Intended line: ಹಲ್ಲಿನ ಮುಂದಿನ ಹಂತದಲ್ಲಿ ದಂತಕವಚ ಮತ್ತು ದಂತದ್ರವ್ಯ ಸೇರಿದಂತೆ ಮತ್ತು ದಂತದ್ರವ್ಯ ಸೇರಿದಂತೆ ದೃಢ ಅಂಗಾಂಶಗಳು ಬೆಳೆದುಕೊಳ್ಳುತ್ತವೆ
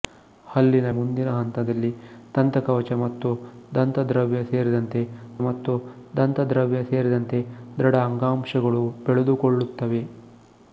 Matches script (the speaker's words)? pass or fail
pass